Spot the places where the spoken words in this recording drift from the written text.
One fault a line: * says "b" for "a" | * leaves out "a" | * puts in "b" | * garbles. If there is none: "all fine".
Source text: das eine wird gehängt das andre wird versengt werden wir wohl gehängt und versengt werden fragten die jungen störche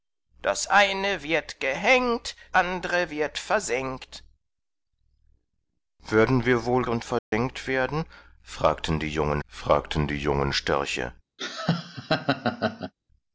* leaves out "das"
* leaves out "gehängt"
* puts in "fragten die jungen"